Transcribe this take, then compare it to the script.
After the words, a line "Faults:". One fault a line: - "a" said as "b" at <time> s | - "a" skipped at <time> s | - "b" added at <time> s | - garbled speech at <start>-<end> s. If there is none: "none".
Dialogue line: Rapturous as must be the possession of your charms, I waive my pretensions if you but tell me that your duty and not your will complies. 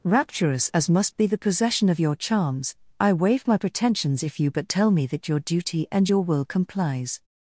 Rapturous as must be the possession of your charms, I waive my pretensions if you but tell me that your duty and your will complies.
Faults:
- "not" skipped at 6.1 s